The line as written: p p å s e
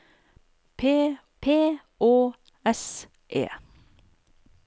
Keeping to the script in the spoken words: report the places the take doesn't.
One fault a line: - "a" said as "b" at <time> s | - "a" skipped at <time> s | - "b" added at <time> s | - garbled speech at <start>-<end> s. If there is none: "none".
none